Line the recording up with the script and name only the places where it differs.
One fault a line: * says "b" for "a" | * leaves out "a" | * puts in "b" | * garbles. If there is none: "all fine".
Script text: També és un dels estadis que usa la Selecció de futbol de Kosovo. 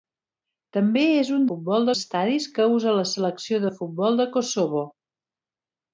* says "futbol" for "dels"